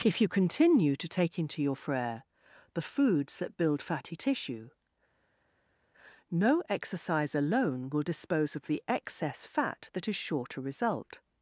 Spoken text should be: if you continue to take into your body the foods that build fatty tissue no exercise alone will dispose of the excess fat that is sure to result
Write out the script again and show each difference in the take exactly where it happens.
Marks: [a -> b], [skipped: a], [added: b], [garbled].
if you continue to take into your [body -> frere] the foods that build fatty tissue no exercise alone will dispose of the excess fat that is sure to result